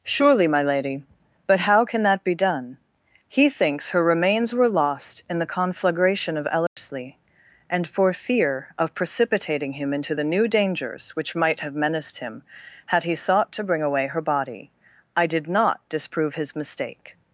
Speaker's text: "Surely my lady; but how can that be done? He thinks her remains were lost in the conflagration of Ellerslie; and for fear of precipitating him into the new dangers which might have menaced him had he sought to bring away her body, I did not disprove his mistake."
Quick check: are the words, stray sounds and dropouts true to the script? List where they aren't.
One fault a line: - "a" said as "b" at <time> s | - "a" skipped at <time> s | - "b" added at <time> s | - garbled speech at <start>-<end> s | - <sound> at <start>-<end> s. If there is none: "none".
- dropout at 6.7-6.8 s